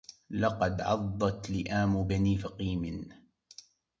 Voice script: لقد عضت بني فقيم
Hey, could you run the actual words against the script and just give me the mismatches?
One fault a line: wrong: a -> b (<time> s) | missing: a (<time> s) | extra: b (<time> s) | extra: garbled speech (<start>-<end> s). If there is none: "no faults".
extra: لئام (1.5 s)